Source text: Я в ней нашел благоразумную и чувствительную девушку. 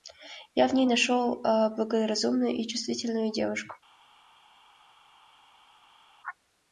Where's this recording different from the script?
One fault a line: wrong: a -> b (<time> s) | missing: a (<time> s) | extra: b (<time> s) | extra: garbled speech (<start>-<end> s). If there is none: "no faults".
no faults